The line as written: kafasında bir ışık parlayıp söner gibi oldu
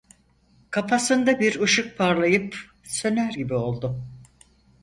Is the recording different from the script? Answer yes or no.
no